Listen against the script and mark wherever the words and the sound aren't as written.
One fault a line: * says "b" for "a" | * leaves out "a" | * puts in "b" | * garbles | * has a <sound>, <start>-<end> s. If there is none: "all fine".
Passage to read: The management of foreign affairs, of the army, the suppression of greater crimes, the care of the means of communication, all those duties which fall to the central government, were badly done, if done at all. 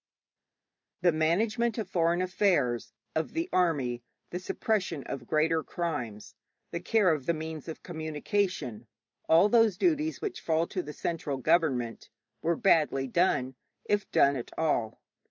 all fine